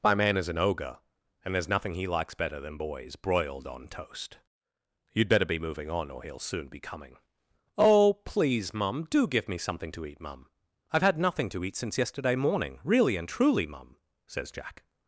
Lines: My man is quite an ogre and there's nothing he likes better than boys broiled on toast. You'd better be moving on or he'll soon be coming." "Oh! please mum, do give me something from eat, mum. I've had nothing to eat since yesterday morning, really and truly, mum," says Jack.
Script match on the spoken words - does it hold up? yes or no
no